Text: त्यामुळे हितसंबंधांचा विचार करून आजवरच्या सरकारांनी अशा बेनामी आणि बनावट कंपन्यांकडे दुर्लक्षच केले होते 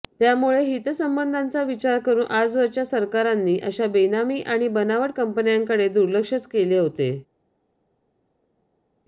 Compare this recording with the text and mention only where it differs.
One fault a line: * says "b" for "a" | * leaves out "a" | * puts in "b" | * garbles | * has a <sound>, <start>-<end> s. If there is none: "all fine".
all fine